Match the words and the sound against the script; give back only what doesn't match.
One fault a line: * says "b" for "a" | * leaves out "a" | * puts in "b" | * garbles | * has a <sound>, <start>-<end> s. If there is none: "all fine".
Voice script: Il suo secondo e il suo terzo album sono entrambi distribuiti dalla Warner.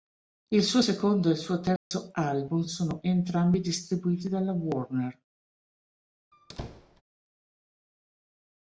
* has a dropout, 1.8-1.9 s
* has a squeak, 6.3-7.0 s